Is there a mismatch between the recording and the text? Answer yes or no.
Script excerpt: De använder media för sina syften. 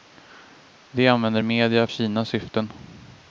yes